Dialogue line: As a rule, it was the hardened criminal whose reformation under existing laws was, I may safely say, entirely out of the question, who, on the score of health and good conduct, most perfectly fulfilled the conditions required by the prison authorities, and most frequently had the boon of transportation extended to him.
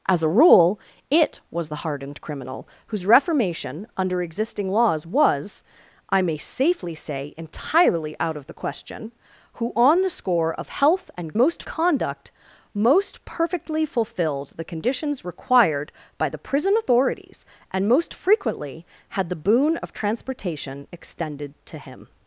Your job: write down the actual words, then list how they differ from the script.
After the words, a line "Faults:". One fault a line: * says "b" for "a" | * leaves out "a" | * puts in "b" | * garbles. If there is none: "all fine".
As a rule, it was the hardened criminal whose reformation under existing laws was, I may safely say, entirely out of the question, who, on the score of health and most conduct, most perfectly fulfilled the conditions required by the prison authorities, and most frequently had the boon of transportation extended to him.
Faults:
* says "most" for "good"